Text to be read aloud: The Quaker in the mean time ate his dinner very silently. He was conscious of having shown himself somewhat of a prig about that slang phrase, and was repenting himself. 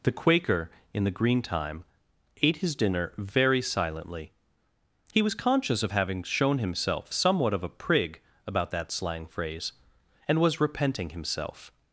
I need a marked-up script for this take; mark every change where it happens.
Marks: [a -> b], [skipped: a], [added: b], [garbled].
The Quaker in the [mean -> green] time ate his dinner very silently. He was conscious of having shown himself somewhat of a prig about that slang phrase, and was repenting himself.